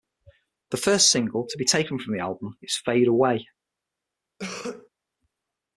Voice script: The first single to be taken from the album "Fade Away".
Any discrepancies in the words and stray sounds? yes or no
yes